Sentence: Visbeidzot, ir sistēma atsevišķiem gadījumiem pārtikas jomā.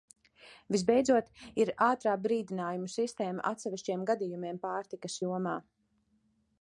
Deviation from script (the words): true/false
true